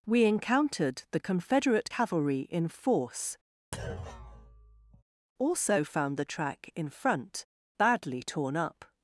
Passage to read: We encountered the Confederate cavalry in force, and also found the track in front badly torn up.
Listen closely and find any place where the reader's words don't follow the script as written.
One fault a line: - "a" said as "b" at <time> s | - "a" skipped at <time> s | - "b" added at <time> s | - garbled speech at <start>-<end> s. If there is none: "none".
- "and" skipped at 3.4 s